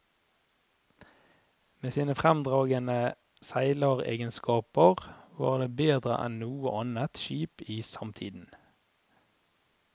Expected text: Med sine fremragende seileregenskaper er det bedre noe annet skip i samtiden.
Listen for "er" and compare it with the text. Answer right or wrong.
wrong